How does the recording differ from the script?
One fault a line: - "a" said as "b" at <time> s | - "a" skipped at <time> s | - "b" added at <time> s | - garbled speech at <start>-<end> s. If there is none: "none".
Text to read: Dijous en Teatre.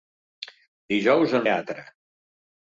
none